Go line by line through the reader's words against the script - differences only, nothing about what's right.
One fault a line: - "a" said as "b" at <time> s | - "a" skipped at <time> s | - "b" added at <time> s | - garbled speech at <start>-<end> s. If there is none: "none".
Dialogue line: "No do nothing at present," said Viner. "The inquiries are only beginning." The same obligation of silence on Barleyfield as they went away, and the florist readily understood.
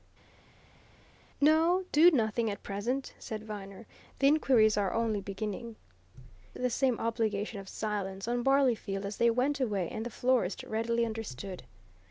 none